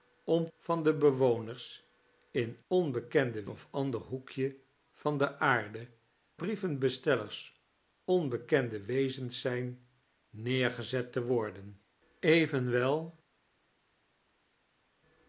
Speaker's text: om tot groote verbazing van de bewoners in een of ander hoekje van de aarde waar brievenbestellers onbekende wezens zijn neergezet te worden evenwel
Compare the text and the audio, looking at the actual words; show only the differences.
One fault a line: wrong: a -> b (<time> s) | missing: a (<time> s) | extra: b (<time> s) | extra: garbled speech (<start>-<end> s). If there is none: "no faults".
missing: tot groote verbazing (0.5 s)
wrong: een -> onbekende (2.7 s)
missing: waar (5.9 s)